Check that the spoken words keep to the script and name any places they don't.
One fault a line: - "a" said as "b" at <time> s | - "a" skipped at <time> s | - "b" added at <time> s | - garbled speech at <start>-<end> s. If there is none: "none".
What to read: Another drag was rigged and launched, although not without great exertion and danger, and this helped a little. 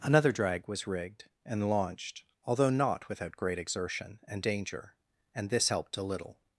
none